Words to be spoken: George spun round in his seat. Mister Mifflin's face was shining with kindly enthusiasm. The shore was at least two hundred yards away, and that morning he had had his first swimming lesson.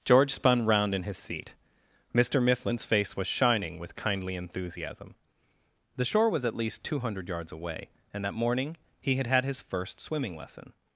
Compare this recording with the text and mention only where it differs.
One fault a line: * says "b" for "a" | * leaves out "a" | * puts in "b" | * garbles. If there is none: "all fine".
all fine